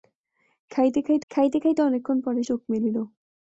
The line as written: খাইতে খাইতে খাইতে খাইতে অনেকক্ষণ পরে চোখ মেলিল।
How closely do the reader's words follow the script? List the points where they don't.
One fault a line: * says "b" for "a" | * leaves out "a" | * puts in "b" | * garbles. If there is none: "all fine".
all fine